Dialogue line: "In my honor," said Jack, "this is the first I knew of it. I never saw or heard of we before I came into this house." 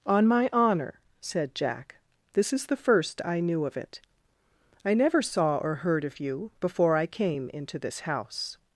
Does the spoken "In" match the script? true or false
false